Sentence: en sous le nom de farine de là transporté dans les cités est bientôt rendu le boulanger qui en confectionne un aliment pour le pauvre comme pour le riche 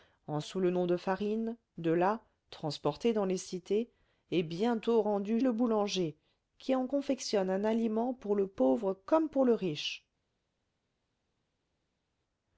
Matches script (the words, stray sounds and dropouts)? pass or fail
pass